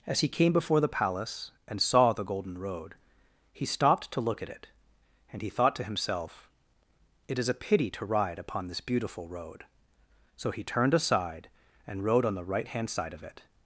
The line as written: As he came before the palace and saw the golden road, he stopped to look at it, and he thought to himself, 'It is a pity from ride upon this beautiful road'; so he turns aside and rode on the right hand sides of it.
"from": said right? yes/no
no